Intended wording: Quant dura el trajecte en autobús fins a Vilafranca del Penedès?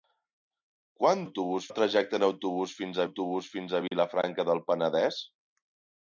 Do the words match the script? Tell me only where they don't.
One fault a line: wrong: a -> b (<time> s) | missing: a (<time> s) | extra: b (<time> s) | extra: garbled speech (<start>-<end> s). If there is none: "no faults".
wrong: dura -> autobús (1.2 s)
extra: autobús fins (3.0 s)